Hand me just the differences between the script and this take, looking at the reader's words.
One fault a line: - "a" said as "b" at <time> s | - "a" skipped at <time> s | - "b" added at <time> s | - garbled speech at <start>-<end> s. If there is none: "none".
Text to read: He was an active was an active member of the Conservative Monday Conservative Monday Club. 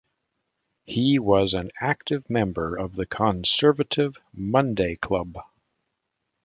- "was an active" skipped at 2.3 s
- "Conservative Monday" skipped at 4.9 s